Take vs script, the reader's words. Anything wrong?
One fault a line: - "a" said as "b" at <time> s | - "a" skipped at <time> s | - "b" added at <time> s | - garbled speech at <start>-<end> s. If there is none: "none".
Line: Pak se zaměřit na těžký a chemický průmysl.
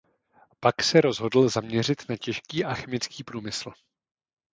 - "rozhodl" added at 1.0 s